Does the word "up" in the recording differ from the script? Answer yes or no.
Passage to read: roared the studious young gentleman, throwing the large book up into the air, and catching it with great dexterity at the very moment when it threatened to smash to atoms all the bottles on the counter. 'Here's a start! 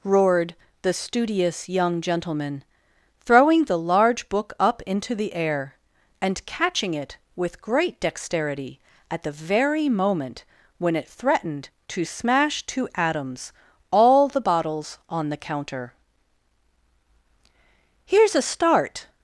no